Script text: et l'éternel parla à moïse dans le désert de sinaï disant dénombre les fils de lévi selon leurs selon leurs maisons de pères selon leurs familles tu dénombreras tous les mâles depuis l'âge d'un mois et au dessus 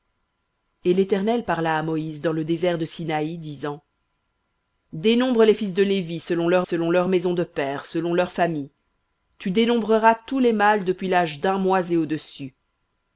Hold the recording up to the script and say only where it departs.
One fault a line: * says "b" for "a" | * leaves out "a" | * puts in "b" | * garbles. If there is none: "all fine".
all fine